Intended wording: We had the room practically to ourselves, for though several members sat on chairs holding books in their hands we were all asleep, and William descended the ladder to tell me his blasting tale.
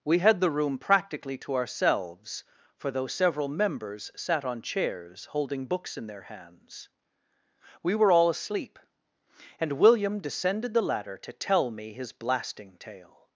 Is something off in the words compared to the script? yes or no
no